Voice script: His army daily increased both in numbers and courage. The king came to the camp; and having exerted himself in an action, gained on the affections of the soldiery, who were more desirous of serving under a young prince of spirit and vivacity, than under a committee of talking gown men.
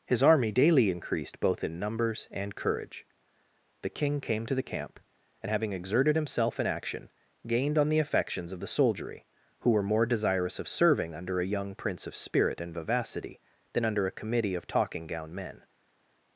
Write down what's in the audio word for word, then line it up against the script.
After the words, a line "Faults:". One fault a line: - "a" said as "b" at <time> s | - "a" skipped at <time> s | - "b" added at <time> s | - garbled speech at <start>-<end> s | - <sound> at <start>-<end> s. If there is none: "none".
His army daily increased both in numbers and courage. The king came to the camp; and having exerted himself in action, gained on the affections of the soldiery, who were more desirous of serving under a young prince of spirit and vivacity, than under a committee of talking gown men.
Faults:
- "an" skipped at 6.7 s